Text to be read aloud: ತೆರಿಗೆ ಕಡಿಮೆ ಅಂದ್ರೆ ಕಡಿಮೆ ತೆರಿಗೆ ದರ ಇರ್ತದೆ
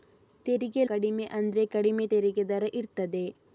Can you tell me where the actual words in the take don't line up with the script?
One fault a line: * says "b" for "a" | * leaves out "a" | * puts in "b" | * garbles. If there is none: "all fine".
all fine